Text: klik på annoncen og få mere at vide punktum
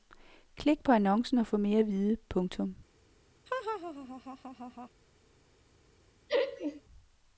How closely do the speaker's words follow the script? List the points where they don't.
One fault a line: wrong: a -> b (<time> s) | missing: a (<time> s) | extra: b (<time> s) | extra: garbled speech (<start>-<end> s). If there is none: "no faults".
no faults